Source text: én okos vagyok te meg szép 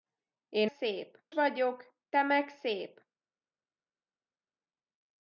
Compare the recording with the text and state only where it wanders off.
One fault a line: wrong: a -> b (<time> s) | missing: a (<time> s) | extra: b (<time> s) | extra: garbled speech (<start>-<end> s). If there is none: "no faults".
wrong: okos -> szép (0.6 s)